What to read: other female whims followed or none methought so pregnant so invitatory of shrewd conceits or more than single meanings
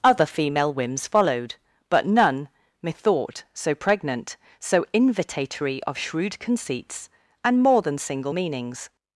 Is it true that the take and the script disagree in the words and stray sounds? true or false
true